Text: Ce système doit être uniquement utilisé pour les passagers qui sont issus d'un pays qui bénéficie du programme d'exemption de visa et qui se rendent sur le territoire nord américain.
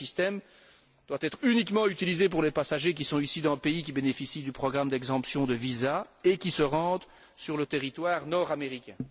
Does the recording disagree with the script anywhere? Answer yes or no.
no